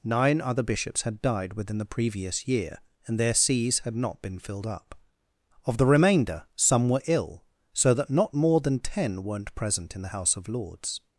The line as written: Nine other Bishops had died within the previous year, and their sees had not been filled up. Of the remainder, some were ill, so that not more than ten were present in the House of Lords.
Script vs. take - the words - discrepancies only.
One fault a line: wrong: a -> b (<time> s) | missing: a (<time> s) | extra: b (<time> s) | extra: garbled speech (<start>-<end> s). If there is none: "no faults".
wrong: were -> weren't (9.2 s)